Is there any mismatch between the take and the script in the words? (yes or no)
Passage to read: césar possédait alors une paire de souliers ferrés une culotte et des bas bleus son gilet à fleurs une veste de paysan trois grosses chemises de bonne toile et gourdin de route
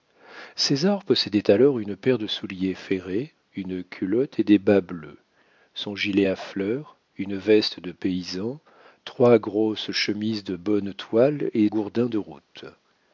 no